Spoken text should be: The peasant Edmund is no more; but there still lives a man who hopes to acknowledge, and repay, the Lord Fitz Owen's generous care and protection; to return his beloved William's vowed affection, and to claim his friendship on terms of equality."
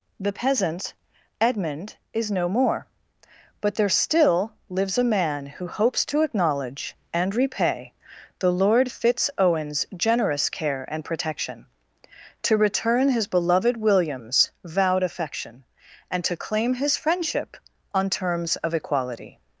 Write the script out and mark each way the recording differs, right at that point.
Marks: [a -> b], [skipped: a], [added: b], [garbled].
The peasant Edmund is no more; but there still lives a man who hopes to acknowledge, and repay, the Lord Fitz Owen's generous care and protection; to return his beloved William's vowed affection, and to claim his friendship on terms of equality."